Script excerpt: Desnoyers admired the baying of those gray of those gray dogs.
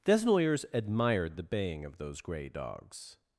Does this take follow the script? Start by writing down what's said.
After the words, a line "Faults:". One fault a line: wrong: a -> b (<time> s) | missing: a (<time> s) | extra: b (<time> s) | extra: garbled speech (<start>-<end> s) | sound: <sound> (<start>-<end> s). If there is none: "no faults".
Desnoyers admired the baying of those gray dogs.
Faults:
missing: of those gray (2.5 s)